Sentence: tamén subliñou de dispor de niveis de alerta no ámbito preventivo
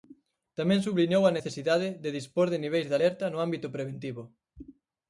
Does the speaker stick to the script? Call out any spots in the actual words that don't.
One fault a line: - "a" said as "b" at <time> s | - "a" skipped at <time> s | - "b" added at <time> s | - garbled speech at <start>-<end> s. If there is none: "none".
- "a necesidade" added at 1.2 s